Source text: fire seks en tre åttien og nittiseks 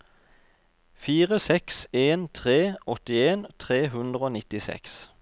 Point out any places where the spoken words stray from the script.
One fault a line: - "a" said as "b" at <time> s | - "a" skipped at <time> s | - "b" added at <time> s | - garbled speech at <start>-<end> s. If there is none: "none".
- "tre hundre" added at 3.6 s